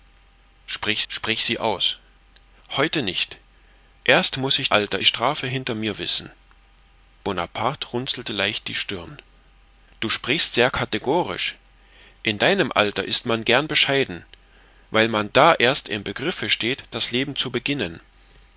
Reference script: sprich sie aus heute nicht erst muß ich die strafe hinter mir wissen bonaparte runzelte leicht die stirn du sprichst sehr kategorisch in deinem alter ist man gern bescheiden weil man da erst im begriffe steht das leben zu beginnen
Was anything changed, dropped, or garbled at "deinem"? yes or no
no